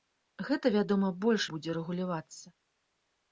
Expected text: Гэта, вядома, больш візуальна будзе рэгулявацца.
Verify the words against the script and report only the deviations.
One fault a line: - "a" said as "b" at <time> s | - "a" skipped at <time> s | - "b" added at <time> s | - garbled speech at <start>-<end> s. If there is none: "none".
- "візуальна" skipped at 1.4 s